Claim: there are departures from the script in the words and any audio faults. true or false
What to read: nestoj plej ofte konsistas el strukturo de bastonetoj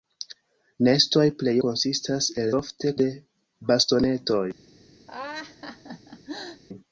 true